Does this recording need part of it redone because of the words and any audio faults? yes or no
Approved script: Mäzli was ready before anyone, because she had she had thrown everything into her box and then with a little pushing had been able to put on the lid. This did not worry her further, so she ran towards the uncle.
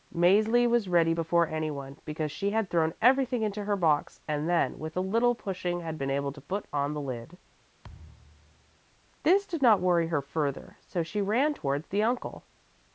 yes